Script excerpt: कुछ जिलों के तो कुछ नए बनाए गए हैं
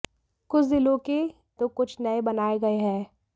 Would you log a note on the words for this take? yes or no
no